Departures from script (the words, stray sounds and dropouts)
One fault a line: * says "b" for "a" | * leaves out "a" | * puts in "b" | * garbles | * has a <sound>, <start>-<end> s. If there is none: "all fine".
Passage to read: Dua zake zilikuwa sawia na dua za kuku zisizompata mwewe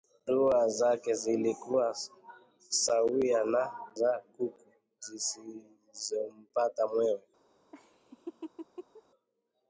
* leaves out "dua"
* has a laugh, 7.7-9.0 s